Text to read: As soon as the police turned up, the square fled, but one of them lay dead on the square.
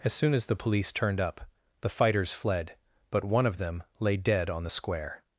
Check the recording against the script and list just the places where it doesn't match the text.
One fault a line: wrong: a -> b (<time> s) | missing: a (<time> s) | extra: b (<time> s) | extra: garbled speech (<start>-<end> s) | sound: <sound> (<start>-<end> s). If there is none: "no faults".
wrong: square -> fighters (1.9 s)